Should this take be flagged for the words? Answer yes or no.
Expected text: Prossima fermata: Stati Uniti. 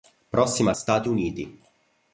yes